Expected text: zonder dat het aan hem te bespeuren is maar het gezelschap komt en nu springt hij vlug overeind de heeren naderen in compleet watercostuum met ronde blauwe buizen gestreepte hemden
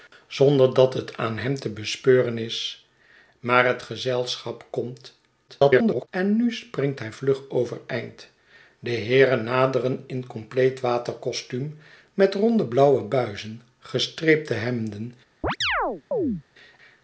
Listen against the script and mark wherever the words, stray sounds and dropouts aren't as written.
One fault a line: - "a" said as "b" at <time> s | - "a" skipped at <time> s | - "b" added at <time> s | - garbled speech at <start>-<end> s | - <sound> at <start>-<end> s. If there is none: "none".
- garbled speech at 5.5-6.1 s
- chirp at 15.4-16.4 s